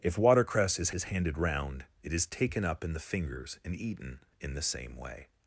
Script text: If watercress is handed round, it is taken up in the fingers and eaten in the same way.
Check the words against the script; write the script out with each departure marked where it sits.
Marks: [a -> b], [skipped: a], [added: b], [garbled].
If watercress is [added: is] handed round, it is taken up in the fingers and eaten in the same way.